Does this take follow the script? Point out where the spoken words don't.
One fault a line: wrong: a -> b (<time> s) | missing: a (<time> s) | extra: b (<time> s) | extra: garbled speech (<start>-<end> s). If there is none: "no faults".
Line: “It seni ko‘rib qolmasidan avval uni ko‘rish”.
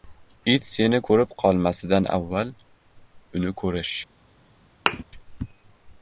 no faults